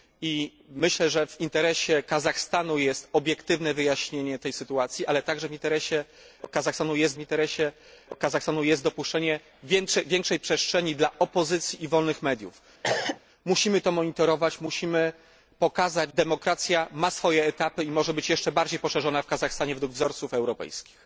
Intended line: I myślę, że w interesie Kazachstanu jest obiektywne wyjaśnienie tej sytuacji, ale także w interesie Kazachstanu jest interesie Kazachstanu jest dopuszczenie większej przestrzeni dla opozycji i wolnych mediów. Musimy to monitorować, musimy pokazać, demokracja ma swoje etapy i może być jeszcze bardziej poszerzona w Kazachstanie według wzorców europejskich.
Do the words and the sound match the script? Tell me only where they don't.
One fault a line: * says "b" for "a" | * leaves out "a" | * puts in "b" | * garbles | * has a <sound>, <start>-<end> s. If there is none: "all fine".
* has a cough, 12.8-13.2 s